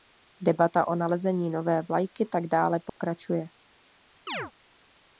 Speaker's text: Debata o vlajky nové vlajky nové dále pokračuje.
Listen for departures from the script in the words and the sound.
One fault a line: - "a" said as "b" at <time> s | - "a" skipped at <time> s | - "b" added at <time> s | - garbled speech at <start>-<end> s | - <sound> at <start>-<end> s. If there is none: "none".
- "vlajky" said as "nalezení" at 0.9 s
- "nové" said as "tak" at 2.2 s
- dropout at 2.9-3.0 s
- chirp at 4.3-4.5 s